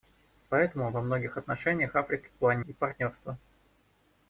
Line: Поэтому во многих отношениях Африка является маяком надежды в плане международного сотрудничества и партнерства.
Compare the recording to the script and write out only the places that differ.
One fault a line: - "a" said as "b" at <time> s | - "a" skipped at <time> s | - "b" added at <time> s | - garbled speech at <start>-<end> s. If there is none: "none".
- "является маяком надежды" skipped at 2.3 s
- "международного сотрудничества" skipped at 2.6 s